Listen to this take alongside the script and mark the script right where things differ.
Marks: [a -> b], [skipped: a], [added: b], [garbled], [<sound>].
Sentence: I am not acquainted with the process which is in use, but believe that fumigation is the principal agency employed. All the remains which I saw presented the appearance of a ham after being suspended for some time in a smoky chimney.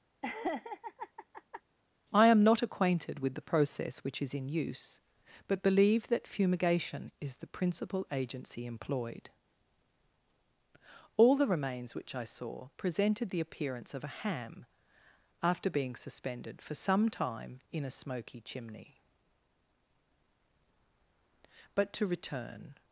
[laugh] I am not acquainted with the process which is in use, but believe that fumigation is the principal agency employed. All the remains which I saw presented the appearance of a ham after being suspended for some time in a smoky chimney. [added: But to return]